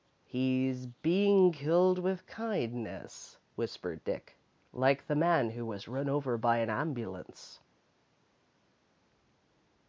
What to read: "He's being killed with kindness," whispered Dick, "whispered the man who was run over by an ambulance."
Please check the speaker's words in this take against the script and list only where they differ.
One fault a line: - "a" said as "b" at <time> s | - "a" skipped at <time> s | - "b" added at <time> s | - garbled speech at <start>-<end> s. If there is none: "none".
- "whispered" said as "like" at 4.7 s